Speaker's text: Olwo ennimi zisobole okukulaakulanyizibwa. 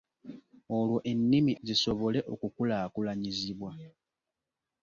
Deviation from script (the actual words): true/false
false